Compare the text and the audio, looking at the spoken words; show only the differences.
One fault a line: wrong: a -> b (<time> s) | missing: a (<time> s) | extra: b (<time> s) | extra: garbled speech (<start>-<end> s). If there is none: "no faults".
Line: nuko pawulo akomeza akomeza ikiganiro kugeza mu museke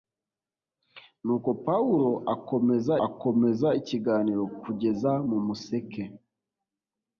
no faults